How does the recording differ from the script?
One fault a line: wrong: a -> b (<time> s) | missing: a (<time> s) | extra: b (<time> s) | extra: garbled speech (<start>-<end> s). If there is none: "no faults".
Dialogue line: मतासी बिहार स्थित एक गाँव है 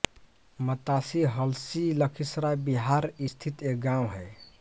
extra: हलसी लखीसराय (1.4 s)